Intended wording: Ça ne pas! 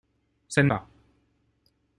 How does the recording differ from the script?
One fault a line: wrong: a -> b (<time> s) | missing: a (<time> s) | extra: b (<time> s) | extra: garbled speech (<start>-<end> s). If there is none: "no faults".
no faults